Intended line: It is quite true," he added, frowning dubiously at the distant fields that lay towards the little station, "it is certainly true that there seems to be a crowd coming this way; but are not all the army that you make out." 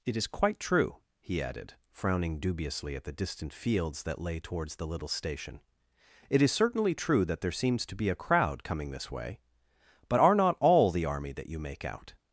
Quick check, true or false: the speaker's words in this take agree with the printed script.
true